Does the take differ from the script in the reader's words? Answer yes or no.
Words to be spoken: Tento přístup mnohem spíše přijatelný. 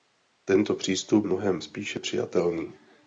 no